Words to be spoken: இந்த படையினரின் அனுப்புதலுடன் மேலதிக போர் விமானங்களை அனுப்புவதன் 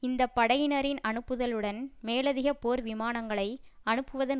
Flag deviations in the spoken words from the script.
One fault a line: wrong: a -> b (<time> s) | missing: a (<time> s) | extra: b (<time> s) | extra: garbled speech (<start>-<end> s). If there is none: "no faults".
no faults